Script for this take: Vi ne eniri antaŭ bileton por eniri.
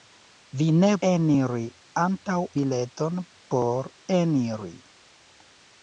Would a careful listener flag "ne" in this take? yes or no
no